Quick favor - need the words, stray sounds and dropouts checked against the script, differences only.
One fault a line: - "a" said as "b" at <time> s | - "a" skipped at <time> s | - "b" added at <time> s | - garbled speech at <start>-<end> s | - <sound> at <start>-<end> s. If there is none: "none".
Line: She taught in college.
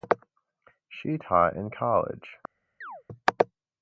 - chirp at 2.8-3.0 s